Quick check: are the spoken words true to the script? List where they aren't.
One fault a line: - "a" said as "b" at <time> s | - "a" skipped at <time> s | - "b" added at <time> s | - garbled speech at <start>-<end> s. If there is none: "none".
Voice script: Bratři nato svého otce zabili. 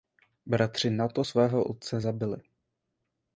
none